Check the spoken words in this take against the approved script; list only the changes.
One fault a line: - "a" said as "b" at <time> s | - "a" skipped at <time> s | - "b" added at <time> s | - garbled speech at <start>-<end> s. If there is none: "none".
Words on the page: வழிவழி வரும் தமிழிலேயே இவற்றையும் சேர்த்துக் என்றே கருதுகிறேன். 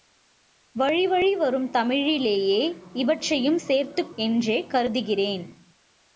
none